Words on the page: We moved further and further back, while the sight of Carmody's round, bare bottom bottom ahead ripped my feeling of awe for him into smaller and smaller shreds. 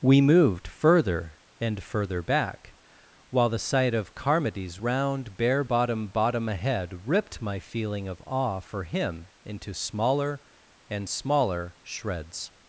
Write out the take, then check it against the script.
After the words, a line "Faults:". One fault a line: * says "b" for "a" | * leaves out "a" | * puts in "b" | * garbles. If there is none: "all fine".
We moved further and further back, while the sight of Carmody's round, bare bottom bottom ahead ripped my feeling of awe for him into smaller and smaller shreds.
Faults:
all fine